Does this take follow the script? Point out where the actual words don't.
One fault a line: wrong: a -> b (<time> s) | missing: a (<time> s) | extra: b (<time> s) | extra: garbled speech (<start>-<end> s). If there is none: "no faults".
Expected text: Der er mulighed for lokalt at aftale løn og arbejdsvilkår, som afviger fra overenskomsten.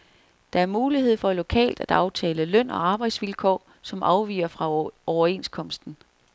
no faults